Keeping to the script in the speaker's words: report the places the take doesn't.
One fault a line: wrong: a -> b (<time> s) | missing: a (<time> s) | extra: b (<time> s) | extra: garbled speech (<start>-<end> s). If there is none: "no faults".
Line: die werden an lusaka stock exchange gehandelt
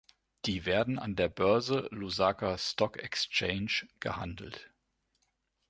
extra: der börse (1.1 s)